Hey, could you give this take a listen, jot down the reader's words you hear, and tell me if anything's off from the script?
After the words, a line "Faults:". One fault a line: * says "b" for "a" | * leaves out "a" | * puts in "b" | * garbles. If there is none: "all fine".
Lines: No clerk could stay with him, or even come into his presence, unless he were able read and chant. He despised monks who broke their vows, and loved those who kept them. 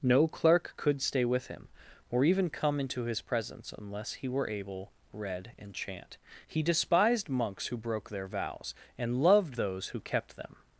No clerk could stay with him, or even come into his presence, unless he were able read and chant. He despised monks who broke their vows, and loved those who kept them.
Faults:
all fine